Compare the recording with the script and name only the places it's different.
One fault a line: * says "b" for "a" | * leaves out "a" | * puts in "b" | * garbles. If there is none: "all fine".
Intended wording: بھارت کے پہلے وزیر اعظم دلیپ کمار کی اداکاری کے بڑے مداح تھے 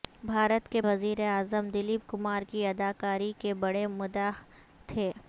* leaves out "پہلے"